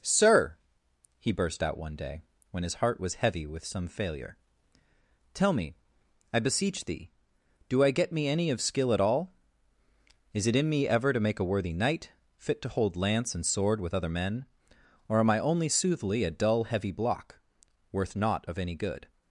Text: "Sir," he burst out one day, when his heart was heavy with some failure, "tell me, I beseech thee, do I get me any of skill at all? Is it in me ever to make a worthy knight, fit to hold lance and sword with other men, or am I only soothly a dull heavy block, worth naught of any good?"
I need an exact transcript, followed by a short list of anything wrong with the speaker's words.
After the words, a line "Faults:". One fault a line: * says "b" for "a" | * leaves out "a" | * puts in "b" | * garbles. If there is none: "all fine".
"Sir," he burst out one day, when his heart was heavy with some failure, "tell me, I beseech thee, do I get me any of skill at all? Is it in me ever to make a worthy knight, fit to hold lance and sword with other men, or am I only soothly a dull heavy block, worth naught of any good?"
Faults:
all fine